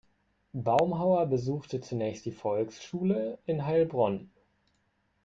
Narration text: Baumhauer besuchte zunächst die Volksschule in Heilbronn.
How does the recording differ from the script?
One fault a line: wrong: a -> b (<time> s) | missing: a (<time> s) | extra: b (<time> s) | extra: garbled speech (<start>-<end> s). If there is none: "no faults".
no faults